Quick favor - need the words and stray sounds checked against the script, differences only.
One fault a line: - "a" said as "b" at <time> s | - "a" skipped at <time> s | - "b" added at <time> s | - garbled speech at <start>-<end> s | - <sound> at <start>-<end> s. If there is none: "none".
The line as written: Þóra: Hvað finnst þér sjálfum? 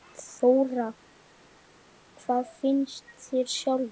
none